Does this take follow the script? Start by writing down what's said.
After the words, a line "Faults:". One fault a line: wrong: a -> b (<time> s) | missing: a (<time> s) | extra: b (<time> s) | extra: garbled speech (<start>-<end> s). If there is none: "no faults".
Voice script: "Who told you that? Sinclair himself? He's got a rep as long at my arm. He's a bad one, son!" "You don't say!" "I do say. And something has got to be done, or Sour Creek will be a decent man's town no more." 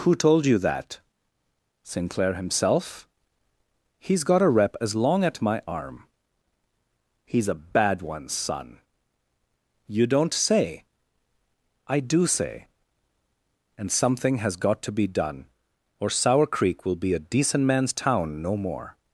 "Who told you that? Sinclair himself? He's got a rep as long at my arm. He's a bad one, son!" "You don't say!" "I do say. And something has got to be done, or Sour Creek will be a decent man's town no more."
Faults:
no faults